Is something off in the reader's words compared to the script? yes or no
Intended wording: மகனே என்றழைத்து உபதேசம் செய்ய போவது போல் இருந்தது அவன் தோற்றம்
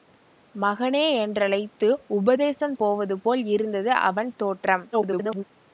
yes